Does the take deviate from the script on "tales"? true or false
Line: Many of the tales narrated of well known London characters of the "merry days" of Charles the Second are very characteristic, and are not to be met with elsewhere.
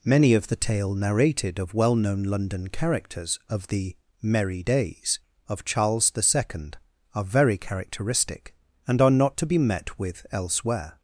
true